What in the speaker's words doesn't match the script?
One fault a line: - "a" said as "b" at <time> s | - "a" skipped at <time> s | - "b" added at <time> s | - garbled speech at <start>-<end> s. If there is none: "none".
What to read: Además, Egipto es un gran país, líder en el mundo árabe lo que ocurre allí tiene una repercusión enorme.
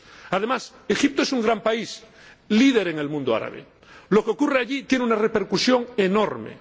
none